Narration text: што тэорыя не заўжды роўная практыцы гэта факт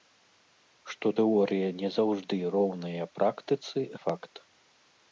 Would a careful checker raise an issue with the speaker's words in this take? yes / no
yes